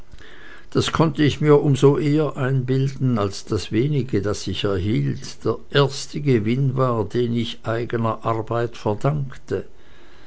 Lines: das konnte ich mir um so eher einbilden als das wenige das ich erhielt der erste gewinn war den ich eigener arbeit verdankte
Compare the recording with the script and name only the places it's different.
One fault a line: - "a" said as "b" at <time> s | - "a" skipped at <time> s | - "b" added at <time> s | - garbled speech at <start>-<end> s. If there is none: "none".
none